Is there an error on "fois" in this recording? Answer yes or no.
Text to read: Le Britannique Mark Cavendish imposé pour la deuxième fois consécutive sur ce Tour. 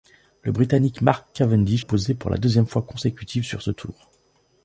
no